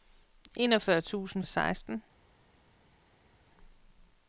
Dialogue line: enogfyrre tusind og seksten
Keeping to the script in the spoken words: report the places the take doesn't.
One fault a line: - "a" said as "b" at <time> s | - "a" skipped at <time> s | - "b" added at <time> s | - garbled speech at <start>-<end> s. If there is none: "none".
none